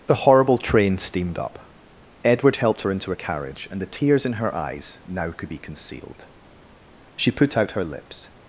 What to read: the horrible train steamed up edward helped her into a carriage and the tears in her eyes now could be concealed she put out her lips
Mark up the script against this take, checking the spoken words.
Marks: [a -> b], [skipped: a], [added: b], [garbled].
the horrible train steamed up edward helped her into a carriage and the tears in her eyes now could be concealed she put out her lips